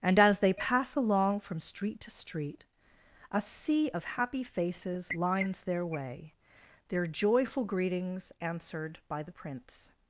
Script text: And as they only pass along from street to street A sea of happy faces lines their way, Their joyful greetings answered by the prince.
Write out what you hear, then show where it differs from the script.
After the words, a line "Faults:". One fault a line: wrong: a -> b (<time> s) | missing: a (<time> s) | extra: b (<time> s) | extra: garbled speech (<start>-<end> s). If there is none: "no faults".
And as they pass along from street to street A sea of happy faces lines their way, Their joyful greetings answered by the prince.
Faults:
missing: only (0.5 s)